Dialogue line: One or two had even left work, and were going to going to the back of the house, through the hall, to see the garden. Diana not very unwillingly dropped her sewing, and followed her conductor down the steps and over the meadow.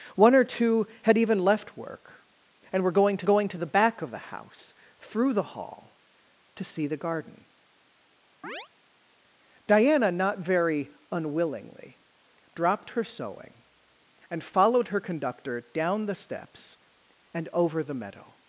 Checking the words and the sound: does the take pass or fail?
fail